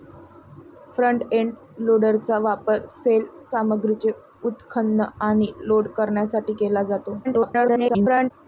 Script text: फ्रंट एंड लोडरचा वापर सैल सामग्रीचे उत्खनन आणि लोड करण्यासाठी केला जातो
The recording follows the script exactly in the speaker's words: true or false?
false